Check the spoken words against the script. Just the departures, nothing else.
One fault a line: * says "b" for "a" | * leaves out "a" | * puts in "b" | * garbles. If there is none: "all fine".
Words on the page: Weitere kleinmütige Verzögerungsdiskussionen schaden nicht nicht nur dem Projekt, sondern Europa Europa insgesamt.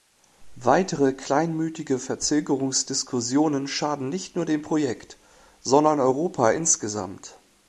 * leaves out "nicht"
* leaves out "Europa"